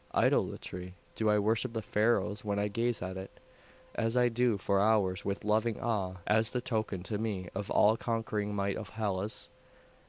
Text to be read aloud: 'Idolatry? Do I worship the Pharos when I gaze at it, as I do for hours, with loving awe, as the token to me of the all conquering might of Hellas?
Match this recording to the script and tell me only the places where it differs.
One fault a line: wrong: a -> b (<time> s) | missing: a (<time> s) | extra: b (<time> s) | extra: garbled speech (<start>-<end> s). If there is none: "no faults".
no faults